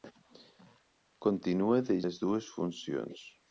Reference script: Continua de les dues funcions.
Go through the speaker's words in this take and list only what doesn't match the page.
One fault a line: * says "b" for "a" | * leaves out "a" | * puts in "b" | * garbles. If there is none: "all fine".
all fine